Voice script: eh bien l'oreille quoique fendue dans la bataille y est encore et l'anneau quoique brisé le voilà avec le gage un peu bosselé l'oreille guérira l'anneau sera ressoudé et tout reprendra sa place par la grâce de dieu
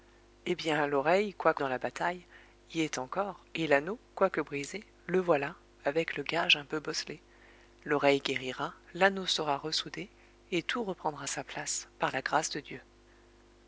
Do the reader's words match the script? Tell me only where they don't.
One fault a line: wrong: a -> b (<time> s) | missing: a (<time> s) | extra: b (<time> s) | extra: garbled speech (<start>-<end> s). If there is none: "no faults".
missing: fendue (1.6 s)